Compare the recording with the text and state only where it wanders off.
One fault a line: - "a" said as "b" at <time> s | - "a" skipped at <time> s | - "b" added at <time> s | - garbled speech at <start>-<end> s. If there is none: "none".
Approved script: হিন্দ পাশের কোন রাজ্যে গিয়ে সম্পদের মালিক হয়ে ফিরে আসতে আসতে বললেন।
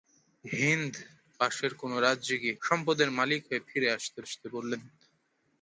none